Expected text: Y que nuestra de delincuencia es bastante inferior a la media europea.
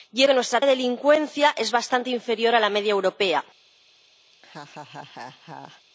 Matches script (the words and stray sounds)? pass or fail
fail